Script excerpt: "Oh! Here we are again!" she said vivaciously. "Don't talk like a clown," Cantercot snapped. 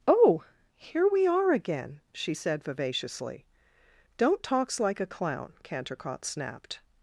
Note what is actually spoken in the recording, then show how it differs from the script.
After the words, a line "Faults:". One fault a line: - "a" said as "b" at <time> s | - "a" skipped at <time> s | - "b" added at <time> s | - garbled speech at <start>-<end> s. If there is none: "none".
"Oh! Here we are again!" she said vivaciously. "Don't talks like a clown," Cantercot snapped.
Faults:
- "talk" said as "talks" at 4.4 s